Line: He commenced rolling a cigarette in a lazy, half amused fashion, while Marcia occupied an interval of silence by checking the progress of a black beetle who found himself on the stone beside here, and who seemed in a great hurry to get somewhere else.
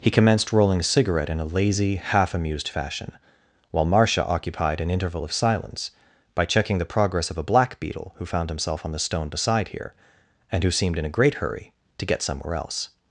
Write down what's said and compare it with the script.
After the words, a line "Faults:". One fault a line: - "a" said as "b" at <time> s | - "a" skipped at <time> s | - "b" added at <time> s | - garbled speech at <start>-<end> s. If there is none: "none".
He commenced rolling a cigarette in a lazy, half amused fashion, while Marcia occupied an interval of silence by checking the progress of a black beetle who found himself on the stone beside here, and who seemed in a great hurry to get somewhere else.
Faults:
none